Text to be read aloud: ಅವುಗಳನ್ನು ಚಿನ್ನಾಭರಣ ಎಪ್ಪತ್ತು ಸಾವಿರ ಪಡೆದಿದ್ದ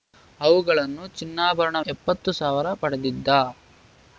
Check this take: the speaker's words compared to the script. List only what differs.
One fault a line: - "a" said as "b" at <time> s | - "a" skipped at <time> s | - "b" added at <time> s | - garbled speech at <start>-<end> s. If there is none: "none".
none